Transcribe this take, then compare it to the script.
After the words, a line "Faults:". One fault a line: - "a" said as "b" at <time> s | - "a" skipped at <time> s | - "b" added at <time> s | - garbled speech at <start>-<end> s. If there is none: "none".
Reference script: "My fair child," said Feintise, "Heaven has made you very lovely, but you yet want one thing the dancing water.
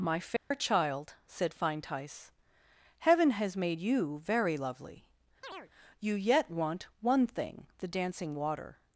"My fair child," said Feintise, "Heaven has made you very lovely, you yet want one thing the dancing water.
Faults:
- "but" skipped at 5.1 s